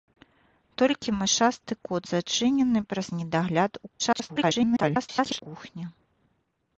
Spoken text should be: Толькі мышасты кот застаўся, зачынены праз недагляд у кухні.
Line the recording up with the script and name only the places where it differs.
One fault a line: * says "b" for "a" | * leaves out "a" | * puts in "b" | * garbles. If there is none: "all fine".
* leaves out "застаўся"
* garbles